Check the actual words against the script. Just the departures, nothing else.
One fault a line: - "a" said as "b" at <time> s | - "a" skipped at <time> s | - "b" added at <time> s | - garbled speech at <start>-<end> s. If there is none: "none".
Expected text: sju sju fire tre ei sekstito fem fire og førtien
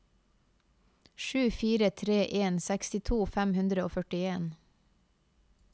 - "sju" skipped at 1.5 s
- "ei" said as "en" at 2.4 s
- "fire" said as "hundre" at 3.6 s